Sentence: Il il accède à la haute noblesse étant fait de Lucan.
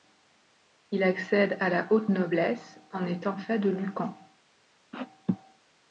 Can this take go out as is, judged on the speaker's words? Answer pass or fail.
fail